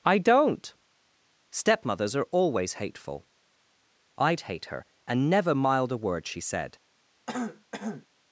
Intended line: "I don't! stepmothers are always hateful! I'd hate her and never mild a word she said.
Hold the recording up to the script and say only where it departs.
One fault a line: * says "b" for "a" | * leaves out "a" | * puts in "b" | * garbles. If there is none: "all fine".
all fine